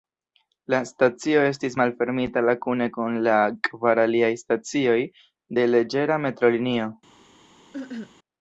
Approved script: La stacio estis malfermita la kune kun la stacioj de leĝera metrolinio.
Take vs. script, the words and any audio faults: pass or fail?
fail